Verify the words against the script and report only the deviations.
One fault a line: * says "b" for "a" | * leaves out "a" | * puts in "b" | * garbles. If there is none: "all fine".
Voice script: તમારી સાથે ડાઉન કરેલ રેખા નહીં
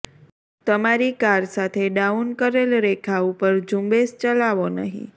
* puts in "કાર"
* puts in "ઉપર ઝુંબેશ ચલાવો"